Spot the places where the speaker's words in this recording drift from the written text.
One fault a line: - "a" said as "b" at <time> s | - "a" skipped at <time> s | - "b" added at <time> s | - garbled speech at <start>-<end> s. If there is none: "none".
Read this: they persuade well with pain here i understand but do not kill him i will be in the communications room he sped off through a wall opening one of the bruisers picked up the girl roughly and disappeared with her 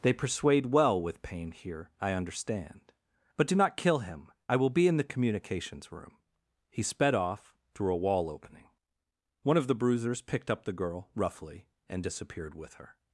none